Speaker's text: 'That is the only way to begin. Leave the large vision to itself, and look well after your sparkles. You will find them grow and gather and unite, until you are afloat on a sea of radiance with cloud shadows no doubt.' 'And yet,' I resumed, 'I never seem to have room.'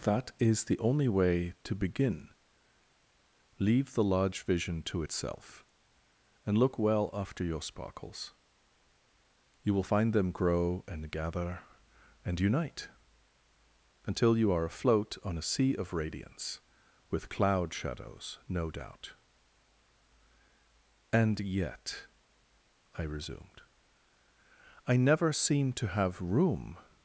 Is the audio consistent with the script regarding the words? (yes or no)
yes